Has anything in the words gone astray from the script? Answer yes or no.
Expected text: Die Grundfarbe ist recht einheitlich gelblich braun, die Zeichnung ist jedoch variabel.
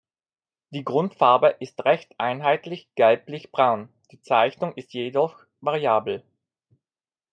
no